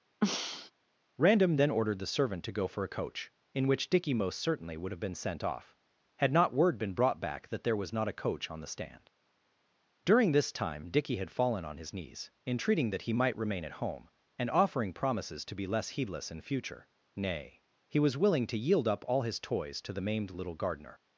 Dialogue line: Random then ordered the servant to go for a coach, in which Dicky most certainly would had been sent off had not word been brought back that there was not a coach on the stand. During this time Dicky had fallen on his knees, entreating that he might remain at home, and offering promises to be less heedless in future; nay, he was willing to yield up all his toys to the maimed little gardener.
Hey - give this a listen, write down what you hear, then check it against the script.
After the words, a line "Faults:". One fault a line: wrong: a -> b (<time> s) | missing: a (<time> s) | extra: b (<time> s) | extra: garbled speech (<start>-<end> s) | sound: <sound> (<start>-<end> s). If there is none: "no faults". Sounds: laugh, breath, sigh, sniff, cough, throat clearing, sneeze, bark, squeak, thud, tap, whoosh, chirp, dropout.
Random then ordered the servant to go for a coach, in which Dicky most certainly would have been sent off had not word been brought back that there was not a coach on the stand. During this time Dicky had fallen on his knees, entreating that he might remain at home, and offering promises to be less heedless in future; nay, he was willing to yield up all his toys to the maimed little gardener.
Faults:
sound: throat clearing (0.2-0.7 s)
wrong: had -> have (4.9 s)